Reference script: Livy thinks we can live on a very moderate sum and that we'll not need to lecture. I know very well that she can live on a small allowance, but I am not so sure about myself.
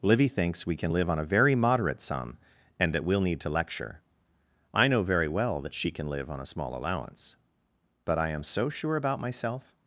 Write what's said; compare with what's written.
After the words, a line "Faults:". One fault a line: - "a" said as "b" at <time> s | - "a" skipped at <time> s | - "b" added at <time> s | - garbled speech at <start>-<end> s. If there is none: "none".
Livy thinks we can live on a very moderate sum and that we'll need to lecture. I know very well that she can live on a small allowance, but I am so sure about myself.
Faults:
- "not" skipped at 3.2 s
- "not" skipped at 8.4 s